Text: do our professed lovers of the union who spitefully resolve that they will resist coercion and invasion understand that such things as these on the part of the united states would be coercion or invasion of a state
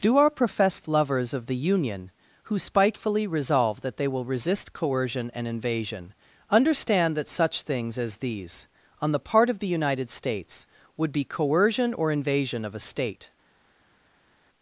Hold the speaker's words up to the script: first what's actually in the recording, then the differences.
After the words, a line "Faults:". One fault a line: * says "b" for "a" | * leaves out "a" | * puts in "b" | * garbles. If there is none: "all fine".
do our professed lovers of the union who spitefully resolve that they will resist coercion and invasion understand that such things as these on the part of the united states would be coercion or invasion of a state
Faults:
all fine